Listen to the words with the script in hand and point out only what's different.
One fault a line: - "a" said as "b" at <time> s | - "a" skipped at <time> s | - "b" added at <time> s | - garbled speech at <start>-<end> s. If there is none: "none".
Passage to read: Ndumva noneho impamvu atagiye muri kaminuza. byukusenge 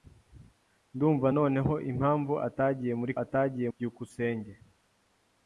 - "kaminuza" said as "atagiye" at 3.2 s